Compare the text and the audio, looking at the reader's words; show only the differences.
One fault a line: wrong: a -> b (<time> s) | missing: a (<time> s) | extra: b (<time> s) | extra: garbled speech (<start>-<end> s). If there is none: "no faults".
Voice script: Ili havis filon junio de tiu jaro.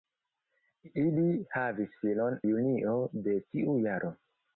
no faults